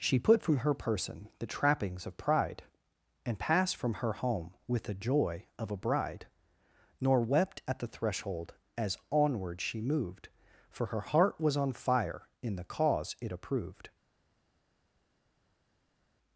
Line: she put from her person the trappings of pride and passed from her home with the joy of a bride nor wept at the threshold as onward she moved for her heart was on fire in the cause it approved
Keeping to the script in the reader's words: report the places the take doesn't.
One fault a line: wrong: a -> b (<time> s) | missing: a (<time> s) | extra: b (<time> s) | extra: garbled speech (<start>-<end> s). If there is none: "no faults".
no faults